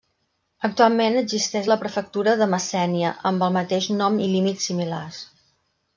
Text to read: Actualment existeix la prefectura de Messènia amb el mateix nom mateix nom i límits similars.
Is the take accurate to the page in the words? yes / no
no